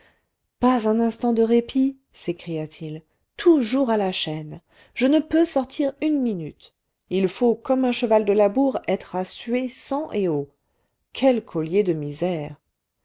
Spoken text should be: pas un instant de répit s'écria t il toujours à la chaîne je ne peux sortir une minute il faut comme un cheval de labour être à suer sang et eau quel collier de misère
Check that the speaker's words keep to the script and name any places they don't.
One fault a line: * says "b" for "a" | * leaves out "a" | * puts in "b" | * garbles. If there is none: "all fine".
all fine